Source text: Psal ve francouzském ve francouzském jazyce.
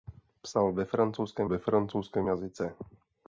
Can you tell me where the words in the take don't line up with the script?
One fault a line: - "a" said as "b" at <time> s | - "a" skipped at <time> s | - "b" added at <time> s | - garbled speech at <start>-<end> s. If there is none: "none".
none